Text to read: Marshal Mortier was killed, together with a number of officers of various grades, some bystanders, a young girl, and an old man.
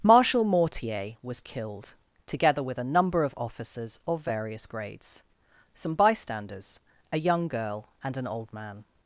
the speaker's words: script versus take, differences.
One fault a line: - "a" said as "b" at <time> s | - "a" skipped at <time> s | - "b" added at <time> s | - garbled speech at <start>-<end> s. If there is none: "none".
none